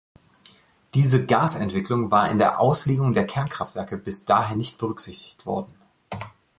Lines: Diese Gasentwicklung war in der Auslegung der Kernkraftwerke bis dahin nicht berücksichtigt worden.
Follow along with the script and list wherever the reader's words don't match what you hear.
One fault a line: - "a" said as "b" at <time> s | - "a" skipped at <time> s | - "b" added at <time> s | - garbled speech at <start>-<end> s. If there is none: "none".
none